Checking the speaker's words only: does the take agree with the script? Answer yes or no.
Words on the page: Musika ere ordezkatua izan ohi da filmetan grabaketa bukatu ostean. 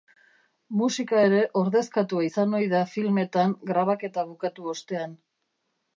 yes